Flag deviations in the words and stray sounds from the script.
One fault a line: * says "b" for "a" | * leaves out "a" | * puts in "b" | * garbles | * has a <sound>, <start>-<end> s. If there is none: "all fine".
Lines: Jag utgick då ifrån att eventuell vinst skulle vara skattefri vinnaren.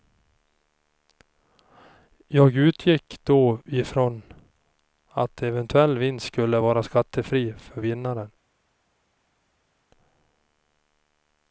* puts in "för"